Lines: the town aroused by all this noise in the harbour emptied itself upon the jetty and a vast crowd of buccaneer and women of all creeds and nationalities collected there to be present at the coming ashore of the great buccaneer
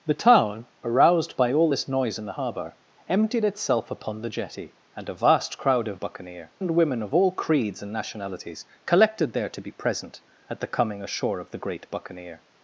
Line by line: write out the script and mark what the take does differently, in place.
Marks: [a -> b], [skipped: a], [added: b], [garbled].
the town aroused by all this noise in the harbour emptied itself upon the jetty and a vast crowd of buccaneer and women of all creeds and nationalities collected there to be present at the coming ashore of the great buccaneer